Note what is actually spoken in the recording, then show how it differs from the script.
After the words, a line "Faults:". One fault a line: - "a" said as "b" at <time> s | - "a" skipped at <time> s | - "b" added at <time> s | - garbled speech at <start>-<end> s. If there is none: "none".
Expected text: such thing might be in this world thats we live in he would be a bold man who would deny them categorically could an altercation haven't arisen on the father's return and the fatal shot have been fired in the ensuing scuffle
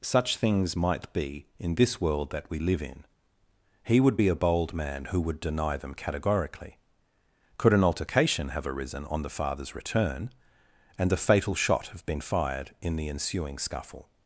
such things might be in this world that we live in he would be a bold man who would deny them categorically could an altercation have arisen on the father's return and the fatal shot have been fired in the ensuing scuffle
Faults:
- "thing" said as "things" at 0.4 s
- "thats" said as "that" at 2.3 s
- "haven't" said as "have" at 8.5 s